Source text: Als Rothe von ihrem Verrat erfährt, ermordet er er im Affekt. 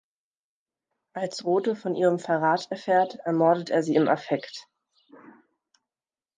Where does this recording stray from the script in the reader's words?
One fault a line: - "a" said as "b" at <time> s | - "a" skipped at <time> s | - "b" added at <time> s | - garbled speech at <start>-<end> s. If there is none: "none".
- "er" said as "sie" at 3.8 s